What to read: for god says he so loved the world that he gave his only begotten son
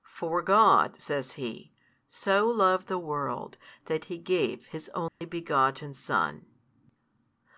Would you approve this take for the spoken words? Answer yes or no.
yes